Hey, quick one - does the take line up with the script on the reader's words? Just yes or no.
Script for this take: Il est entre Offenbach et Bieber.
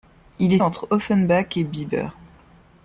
yes